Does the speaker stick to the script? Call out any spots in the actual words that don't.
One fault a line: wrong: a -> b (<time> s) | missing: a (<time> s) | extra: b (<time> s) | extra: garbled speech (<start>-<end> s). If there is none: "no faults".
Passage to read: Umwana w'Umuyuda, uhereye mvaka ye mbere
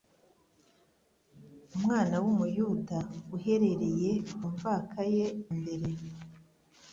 no faults